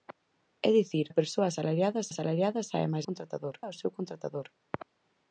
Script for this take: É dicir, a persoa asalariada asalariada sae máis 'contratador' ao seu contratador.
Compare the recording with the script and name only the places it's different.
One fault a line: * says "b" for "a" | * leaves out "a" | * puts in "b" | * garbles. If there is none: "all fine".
all fine